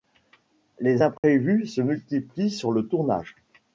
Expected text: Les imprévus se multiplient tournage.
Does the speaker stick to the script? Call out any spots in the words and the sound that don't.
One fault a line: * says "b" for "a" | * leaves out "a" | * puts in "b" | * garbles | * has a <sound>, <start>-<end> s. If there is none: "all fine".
* has a dropout, 1.2-1.2 s
* puts in "sur le"